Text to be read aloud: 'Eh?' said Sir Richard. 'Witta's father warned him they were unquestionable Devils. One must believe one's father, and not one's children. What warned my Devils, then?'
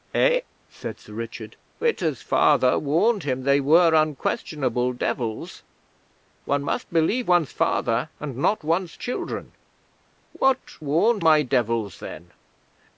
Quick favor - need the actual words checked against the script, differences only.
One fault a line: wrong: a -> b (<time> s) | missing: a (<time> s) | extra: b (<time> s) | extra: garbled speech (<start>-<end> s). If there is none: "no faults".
no faults